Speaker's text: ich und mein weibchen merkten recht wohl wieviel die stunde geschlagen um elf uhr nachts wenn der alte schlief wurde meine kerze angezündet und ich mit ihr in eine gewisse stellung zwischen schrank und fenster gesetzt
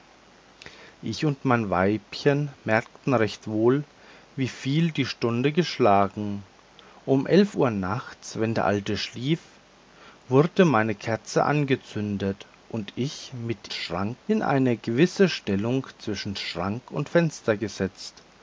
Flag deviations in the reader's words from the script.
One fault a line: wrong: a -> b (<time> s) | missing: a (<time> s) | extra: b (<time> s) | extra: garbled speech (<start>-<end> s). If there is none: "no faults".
wrong: ihr -> schrank (13.7 s)